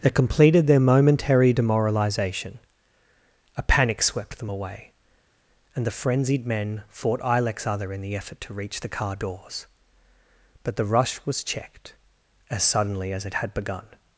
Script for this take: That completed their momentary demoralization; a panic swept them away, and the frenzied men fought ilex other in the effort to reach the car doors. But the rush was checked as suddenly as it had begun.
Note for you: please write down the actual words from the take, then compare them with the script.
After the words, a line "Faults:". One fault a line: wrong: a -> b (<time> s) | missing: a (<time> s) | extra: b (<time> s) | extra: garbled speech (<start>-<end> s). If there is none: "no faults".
That completed their momentary demoralization; a panic swept them away, and the frenzied men fought ilex other in the effort to reach the car doors. But the rush was checked as suddenly as it had begun.
Faults:
no faults